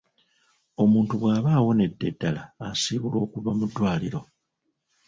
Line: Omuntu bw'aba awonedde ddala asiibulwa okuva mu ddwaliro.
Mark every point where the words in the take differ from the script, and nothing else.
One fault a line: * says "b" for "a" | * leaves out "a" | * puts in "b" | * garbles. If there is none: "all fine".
all fine